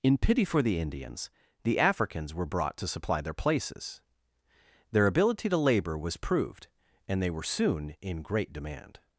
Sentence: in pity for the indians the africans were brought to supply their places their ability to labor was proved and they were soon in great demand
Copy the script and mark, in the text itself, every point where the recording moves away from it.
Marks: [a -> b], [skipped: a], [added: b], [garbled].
in pity for the indians the africans were brought to supply their places their ability to labor was proved and they were soon in great demand